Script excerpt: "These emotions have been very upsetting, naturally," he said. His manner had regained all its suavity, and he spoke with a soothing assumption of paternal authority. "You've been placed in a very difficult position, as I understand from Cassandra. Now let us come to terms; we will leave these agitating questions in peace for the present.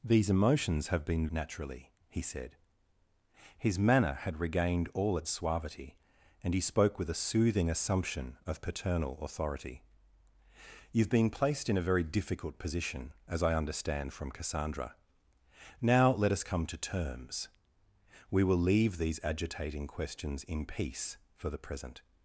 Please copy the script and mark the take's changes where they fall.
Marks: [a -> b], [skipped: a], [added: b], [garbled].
"These emotions have been [skipped: very upsetting,] naturally," he said. His manner had regained all its suavity, and he spoke with a soothing assumption of paternal authority. "You've been placed in a very difficult position, as I understand from Cassandra. Now let us come to terms; we will leave these agitating questions in peace for the present.